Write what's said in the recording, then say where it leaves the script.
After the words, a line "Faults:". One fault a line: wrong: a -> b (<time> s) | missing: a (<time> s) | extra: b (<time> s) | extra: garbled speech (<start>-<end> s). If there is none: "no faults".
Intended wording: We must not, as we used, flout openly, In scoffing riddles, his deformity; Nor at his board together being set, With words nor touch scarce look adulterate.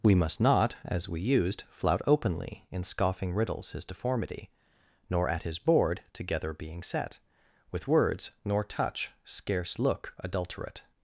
We must not, as we used, flout openly, In scoffing riddles, his deformity; Nor at his board together being set, With words nor touch scarce look adulterate.
Faults:
no faults